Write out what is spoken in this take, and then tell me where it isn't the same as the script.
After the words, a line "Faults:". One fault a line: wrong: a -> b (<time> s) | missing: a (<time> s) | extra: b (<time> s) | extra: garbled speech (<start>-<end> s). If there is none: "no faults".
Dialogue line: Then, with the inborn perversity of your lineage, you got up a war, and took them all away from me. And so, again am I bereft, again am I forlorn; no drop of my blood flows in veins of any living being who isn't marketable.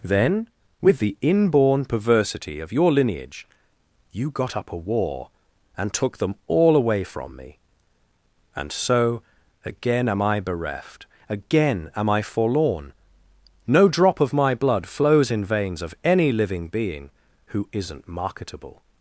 Then, with the inborn perversity of your lineage, you got up a war, and took them all away from me. And so, again am I bereft, again am I forlorn; no drop of my blood flows in veins of any living being who isn't marketable.
Faults:
no faults